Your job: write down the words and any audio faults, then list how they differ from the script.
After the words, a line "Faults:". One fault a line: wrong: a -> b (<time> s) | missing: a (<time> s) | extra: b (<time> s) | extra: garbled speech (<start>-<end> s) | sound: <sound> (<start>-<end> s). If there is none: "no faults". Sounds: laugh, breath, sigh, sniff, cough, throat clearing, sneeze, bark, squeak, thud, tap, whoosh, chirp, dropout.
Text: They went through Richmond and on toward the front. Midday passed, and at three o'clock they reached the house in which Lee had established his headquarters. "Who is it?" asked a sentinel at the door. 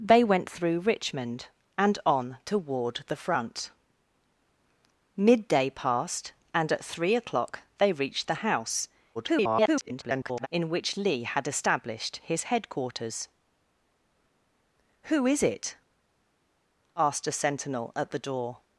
They went through Richmond and on toward the front. Midday passed, and at three o'clock they reached the house [garbled] in which Lee had established his headquarters. "Who is it?" asked a sentinel at the door.
Faults:
extra: garbled speech (9.1-10.5 s)